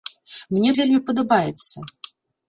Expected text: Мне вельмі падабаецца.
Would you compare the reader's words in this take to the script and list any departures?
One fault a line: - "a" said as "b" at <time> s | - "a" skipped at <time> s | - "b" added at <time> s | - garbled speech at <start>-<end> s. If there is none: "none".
none